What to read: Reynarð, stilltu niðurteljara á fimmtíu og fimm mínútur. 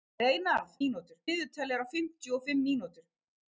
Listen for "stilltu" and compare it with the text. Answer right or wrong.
wrong